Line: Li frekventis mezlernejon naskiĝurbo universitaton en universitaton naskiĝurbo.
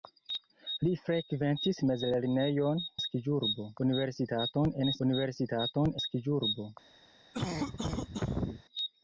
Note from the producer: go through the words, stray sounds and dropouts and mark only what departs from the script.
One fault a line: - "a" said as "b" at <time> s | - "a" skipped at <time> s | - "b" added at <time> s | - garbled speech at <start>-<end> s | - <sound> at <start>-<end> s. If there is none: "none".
- cough at 7.3-8.6 s